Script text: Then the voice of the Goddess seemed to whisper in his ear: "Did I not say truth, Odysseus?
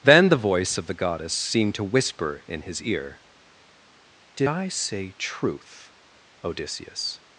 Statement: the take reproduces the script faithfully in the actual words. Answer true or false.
false